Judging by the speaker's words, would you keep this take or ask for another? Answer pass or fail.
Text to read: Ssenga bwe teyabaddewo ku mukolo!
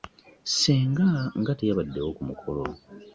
fail